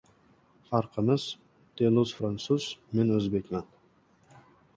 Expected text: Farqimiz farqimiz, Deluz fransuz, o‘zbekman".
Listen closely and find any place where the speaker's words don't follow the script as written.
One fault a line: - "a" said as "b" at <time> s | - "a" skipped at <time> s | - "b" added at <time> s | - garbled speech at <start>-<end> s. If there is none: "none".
- "farqimiz" skipped at 1.2 s
- "men" added at 3.0 s